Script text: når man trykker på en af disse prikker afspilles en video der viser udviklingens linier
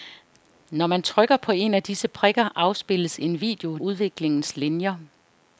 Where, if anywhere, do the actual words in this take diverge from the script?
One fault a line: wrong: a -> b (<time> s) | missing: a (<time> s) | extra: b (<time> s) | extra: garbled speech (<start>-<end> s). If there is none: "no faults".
missing: der viser (3.8 s)